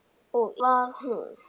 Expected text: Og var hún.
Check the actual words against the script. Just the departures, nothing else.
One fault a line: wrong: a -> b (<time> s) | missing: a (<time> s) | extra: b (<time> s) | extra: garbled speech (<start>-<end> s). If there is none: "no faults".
no faults